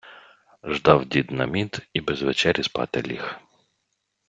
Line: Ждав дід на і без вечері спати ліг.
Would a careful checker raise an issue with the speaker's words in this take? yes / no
yes